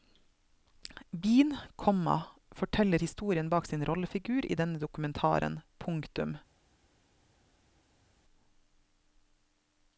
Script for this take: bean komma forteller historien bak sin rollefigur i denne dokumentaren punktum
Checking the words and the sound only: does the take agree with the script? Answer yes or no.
yes